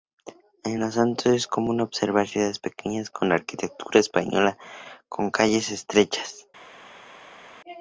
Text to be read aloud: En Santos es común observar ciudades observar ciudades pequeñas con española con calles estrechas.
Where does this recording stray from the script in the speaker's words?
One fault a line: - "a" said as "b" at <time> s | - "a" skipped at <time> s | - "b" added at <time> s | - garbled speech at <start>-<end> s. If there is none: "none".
- "Los" added at 0.8 s
- "observar ciudades" skipped at 2.6 s
- "arquitectura" added at 3.3 s